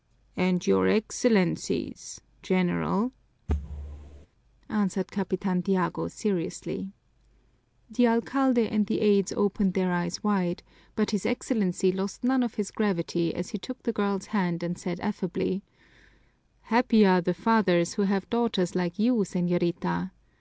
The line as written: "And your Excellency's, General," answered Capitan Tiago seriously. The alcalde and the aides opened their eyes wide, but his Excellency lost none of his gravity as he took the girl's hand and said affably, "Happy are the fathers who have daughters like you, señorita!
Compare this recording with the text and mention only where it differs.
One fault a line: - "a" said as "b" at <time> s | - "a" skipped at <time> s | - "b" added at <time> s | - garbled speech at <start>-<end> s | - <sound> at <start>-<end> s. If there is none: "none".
- thud at 3.5-4.3 s